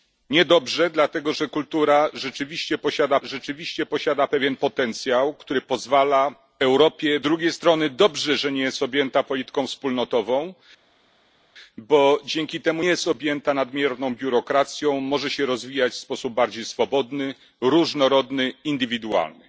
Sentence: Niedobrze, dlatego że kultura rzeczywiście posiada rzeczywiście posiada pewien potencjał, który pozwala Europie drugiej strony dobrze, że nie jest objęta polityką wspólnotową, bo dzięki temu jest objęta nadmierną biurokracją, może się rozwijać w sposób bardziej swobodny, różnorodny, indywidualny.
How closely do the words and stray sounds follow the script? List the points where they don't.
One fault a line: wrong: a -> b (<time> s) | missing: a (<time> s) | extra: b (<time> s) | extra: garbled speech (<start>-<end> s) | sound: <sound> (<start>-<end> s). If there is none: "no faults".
no faults